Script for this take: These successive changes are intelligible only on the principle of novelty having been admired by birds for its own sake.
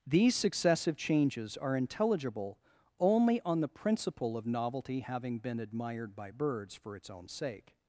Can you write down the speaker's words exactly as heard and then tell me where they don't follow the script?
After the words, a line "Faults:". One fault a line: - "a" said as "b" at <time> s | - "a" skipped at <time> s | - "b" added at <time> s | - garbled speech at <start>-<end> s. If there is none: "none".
These successive changes are intelligible only on the principle of novelty having been admired by birds for its own sake.
Faults:
none